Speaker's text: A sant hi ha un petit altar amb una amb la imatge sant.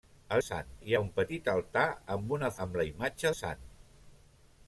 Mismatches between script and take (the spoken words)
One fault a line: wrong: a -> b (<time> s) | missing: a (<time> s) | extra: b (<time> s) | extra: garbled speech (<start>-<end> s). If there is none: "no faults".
no faults